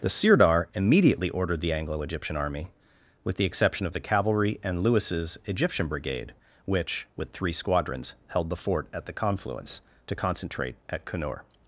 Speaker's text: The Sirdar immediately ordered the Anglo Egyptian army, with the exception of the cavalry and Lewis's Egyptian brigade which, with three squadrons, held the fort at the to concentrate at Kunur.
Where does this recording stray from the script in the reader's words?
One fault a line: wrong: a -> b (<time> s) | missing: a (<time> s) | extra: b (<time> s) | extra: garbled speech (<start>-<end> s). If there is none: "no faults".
extra: confluence (9.1 s)